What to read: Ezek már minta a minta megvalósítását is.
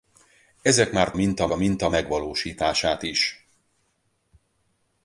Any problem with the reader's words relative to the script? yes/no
no